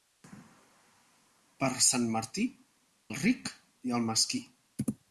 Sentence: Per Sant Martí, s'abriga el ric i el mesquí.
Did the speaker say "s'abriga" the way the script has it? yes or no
no